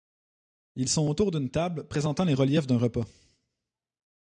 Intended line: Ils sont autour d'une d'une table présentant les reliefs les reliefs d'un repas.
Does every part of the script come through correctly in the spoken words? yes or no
no